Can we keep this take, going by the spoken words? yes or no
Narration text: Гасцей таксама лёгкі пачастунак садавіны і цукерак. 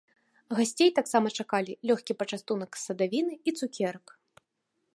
no